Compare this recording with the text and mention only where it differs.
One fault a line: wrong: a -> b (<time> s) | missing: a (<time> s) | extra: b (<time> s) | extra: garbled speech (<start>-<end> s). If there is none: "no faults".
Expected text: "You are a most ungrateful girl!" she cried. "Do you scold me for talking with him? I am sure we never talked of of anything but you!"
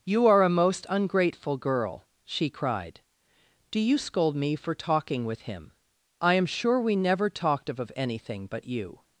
no faults